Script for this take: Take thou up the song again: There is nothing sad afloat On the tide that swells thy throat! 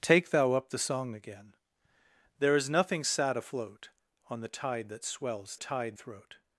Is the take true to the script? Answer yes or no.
no